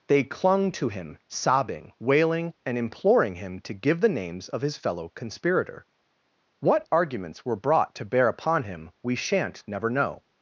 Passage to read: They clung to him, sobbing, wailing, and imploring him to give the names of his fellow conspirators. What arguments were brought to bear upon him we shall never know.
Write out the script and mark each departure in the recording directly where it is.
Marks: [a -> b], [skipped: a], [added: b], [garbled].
They clung to him, sobbing, wailing, and imploring him to give the names of his fellow [conspirators. -> conspirator] What arguments were brought to bear upon him we [shall -> shan't] never know.